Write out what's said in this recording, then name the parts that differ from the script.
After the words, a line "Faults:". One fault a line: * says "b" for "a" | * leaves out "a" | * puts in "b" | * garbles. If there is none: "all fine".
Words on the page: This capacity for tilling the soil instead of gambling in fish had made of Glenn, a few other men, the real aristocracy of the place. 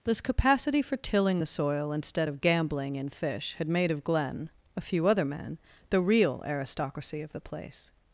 This capacity for tilling the soil instead of gambling in fish had made of Glenn, a few other men, the real aristocracy of the place.
Faults:
all fine